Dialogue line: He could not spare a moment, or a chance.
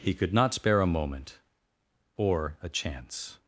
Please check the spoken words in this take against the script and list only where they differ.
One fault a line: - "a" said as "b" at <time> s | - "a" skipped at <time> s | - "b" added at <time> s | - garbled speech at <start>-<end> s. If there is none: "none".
none